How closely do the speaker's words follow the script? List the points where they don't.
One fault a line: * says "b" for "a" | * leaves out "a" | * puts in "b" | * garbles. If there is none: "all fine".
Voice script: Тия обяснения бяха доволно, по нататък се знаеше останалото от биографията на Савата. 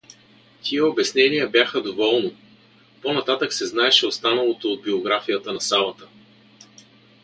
all fine